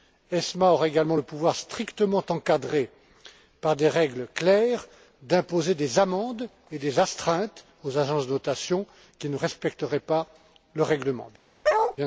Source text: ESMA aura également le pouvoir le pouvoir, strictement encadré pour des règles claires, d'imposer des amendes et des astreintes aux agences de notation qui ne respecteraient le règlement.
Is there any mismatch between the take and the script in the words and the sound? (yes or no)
yes